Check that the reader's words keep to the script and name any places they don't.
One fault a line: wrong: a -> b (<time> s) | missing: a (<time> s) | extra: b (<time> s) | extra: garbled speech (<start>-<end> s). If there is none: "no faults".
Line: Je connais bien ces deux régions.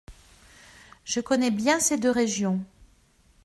no faults